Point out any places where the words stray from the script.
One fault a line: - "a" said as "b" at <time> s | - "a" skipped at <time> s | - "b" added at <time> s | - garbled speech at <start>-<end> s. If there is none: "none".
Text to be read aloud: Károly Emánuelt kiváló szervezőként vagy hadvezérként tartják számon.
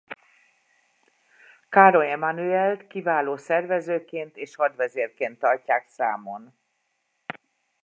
- "vagy" said as "és" at 4.4 s